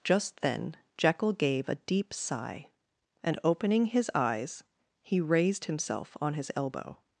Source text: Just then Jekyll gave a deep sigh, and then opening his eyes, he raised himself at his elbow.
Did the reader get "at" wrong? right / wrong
wrong